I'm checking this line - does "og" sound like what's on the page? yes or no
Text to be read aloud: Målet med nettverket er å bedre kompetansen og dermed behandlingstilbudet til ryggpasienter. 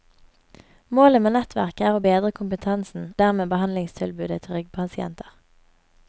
no